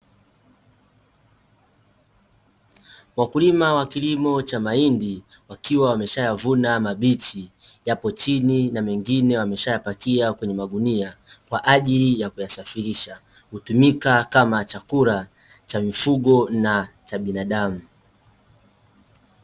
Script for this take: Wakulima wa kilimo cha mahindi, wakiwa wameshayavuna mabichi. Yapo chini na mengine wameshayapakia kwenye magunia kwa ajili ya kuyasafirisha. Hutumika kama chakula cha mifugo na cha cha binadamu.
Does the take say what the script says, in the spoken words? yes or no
no